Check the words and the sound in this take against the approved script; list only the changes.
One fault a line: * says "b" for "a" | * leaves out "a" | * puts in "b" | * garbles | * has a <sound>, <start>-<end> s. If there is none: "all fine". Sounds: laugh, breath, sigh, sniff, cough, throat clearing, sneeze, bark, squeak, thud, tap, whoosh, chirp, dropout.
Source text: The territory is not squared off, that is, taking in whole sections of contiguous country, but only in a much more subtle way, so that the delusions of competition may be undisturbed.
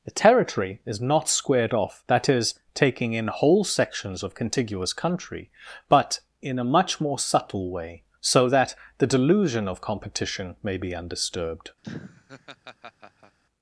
* leaves out "only"
* says "delusion" for "delusions"
* has a laugh, 11.8-13.4 s